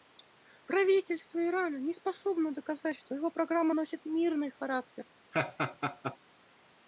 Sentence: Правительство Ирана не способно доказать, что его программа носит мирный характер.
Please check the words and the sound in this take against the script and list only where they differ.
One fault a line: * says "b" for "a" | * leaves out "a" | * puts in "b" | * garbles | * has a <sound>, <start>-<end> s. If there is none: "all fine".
* has a laugh, 5.3-6.2 s